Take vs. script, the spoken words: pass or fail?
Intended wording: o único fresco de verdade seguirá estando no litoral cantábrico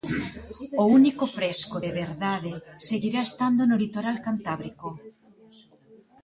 pass